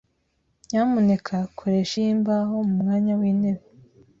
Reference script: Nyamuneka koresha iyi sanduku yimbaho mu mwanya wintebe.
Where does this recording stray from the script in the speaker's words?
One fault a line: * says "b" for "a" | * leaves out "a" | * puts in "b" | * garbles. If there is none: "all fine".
* leaves out "iyi sanduku"